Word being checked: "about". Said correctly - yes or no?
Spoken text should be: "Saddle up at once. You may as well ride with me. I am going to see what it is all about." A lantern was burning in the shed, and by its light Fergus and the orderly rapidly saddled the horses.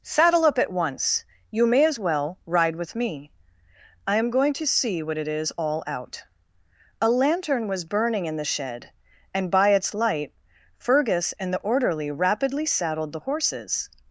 no